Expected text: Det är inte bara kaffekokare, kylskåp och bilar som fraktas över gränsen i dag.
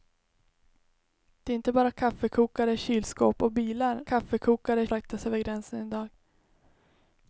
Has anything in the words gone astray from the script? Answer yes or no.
yes